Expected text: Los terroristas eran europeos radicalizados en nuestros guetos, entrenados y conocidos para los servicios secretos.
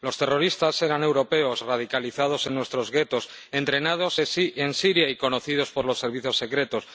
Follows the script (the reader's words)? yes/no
no